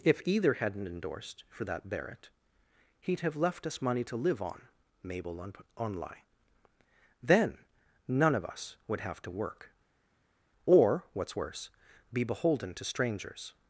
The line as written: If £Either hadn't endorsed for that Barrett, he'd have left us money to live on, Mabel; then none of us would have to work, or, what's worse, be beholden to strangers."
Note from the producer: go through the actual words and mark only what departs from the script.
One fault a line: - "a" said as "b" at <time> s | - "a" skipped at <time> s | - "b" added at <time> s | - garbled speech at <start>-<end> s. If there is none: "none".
- "on on lie" added at 5.4 s